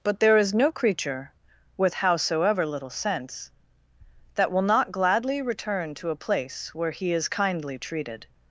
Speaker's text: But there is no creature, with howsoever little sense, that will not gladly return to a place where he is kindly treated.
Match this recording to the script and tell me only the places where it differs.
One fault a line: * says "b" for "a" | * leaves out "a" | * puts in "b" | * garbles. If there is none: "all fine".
all fine